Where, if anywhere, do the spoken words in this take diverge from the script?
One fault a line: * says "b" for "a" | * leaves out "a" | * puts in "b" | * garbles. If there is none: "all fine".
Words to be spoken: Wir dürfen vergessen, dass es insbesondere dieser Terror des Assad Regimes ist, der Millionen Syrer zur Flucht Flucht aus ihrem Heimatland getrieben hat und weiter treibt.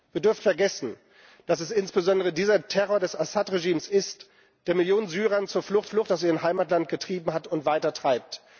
all fine